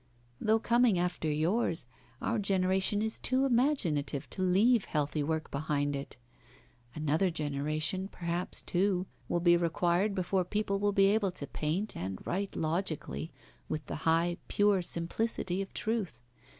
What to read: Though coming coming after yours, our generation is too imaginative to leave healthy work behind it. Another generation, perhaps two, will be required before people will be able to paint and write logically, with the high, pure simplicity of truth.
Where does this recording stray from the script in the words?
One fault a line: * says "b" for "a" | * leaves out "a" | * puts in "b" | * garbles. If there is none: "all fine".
* leaves out "coming"